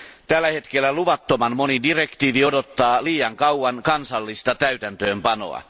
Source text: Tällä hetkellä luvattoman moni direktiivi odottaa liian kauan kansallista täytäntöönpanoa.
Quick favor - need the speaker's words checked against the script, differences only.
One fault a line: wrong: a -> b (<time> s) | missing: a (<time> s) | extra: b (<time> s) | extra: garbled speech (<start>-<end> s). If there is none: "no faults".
no faults